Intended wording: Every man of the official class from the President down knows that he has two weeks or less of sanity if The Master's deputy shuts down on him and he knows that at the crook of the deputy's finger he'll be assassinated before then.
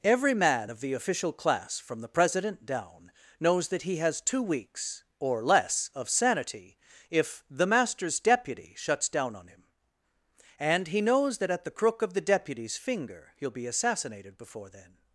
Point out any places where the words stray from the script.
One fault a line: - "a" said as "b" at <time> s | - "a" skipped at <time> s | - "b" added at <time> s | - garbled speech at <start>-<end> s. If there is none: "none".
none